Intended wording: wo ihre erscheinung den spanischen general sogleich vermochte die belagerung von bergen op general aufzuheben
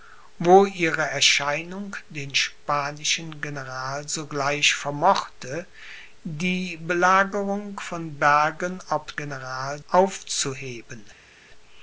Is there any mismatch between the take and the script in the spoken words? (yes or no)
no